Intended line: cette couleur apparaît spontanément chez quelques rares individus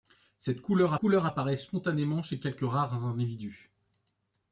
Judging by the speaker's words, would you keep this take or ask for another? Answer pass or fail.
fail